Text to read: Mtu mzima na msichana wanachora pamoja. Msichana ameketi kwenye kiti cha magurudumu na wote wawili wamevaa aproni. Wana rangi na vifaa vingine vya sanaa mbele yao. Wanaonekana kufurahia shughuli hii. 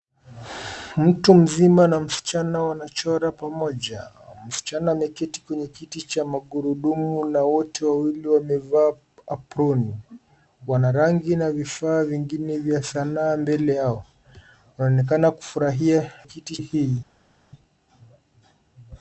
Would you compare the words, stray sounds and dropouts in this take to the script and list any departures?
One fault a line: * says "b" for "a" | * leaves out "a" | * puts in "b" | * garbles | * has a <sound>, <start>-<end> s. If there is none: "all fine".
* says "kiti" for "shughuli"